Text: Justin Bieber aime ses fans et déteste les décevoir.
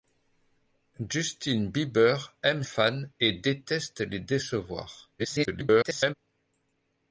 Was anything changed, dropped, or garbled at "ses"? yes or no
yes